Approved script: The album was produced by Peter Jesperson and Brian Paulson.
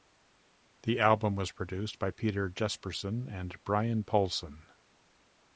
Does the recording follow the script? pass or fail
pass